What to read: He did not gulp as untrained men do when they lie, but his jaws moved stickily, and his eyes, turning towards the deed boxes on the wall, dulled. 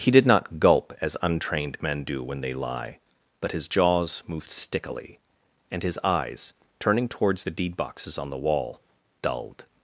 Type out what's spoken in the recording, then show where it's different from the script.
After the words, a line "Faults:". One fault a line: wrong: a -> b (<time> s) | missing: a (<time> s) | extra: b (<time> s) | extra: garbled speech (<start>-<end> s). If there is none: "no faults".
He did not gulp as untrained men do when they lie, but his jaws moved stickily, and his eyes, turning towards the deed boxes on the wall, dulled.
Faults:
no faults